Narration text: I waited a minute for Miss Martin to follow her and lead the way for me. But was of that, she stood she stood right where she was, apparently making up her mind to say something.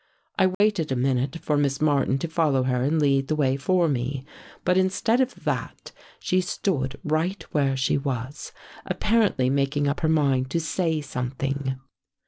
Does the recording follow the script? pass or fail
fail